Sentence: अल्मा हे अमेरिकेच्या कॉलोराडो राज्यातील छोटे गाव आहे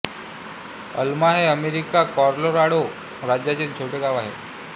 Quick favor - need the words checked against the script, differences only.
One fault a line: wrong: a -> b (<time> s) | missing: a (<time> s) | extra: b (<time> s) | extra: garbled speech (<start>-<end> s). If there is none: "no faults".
no faults